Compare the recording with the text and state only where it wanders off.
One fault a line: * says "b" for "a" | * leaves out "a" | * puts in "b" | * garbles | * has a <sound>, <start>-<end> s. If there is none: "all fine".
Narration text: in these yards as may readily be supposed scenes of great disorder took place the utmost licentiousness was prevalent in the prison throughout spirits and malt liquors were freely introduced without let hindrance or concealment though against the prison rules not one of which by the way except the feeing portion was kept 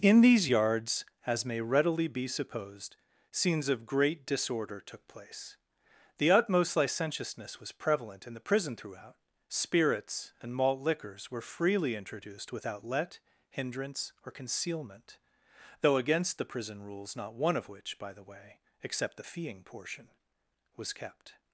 all fine